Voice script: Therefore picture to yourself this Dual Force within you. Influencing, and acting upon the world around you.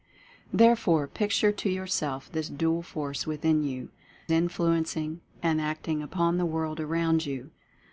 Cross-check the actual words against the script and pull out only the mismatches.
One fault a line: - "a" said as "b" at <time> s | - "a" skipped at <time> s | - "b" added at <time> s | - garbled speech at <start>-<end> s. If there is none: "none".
none